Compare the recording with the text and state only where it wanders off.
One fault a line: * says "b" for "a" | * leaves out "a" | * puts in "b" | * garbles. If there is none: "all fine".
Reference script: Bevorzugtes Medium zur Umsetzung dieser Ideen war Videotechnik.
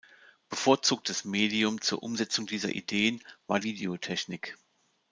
all fine